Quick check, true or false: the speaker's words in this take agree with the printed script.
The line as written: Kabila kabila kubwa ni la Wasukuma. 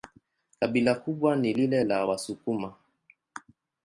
false